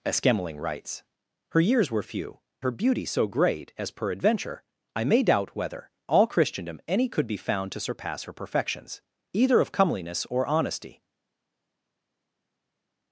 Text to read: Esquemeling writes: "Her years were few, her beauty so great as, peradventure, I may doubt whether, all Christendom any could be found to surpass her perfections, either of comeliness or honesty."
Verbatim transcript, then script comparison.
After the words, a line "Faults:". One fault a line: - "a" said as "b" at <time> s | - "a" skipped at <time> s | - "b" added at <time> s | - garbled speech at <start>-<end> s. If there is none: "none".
Esquemeling writes: "Her years were few, her beauty so great as, peradventure, I may doubt whether, all Christendom any could be found to surpass her perfections, either of comeliness or honesty."
Faults:
none